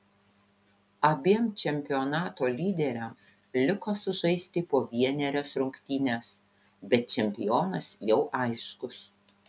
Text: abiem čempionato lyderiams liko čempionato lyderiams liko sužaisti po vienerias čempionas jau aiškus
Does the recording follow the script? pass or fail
fail